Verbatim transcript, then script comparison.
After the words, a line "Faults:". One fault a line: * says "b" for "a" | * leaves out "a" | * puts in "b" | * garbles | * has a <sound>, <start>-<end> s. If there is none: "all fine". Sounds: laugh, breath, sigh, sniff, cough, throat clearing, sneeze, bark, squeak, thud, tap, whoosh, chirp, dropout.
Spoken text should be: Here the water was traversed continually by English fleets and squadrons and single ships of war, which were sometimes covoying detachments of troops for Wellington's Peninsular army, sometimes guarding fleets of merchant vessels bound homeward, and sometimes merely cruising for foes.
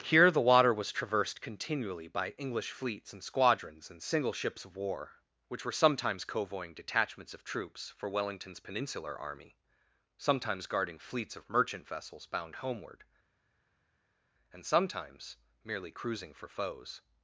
Here the water was traversed continually by English fleets and squadrons and single ships of war, which were sometimes covoying detachments of troops for Wellington's Peninsular army, sometimes guarding fleets of merchant vessels bound homeward, and sometimes merely cruising for foes.
Faults:
all fine